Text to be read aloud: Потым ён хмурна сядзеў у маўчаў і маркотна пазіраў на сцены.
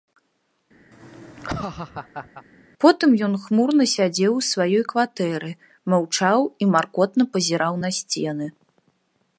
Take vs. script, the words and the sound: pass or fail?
fail